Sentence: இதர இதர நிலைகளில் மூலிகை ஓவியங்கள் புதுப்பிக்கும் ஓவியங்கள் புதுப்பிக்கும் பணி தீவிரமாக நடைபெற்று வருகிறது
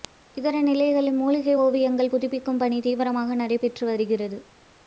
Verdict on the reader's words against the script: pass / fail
fail